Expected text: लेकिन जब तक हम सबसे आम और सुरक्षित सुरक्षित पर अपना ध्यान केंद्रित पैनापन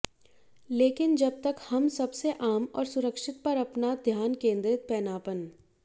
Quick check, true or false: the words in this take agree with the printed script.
false